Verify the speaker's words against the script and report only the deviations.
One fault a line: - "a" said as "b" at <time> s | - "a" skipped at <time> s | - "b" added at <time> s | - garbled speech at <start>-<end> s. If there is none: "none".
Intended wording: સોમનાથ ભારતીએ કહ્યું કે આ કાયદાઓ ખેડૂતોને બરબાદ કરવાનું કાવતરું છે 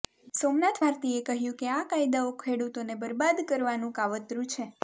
none